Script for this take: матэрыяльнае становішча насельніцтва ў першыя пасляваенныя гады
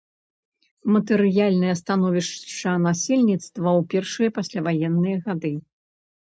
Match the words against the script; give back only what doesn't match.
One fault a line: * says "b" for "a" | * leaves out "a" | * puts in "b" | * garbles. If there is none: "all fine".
all fine